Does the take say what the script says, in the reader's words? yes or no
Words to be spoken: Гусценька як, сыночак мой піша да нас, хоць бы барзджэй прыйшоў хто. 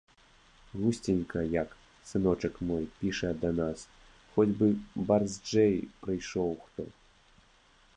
yes